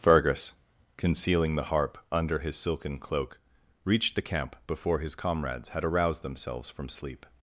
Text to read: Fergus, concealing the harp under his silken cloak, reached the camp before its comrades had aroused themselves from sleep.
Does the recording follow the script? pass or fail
fail